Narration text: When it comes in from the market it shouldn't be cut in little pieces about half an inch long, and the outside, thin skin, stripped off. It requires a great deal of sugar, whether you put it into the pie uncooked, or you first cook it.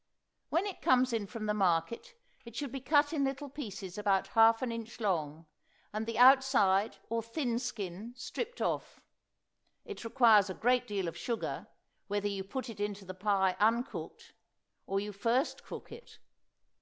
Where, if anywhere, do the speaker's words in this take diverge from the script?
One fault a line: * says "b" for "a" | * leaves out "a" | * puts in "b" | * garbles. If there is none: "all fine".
* says "should" for "shouldn't"
* puts in "or"